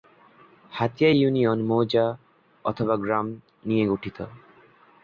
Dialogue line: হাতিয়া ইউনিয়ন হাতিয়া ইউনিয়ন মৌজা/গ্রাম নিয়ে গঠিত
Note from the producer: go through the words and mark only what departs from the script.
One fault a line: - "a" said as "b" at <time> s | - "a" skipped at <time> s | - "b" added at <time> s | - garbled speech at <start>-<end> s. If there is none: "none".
- "হাতিয়া ইউনিয়ন" skipped at 1.6 s